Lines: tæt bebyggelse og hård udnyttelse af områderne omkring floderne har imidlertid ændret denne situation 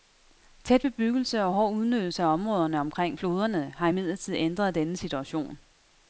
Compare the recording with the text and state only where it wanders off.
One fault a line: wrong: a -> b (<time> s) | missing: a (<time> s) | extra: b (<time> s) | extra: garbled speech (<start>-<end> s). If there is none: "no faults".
no faults